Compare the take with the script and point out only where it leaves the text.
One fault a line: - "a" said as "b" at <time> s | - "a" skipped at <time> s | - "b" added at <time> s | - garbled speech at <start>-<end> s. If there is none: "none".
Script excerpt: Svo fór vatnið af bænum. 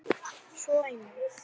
- "fór vatnið af" skipped at 0.8 s